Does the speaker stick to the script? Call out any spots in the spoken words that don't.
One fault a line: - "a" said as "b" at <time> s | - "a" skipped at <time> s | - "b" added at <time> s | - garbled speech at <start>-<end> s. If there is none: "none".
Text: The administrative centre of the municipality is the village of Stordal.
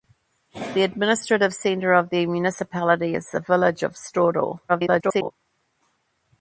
- garbled speech at 4.7-5.3 s